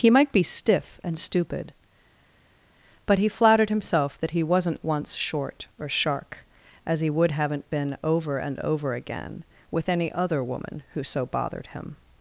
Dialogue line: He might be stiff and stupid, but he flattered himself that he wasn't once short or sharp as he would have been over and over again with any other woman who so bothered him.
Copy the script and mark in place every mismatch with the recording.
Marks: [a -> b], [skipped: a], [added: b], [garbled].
He might be stiff and stupid, but he flattered himself that he wasn't once short or [sharp -> shark] as he would [have -> haven't] been over and over again with any other woman who so bothered him.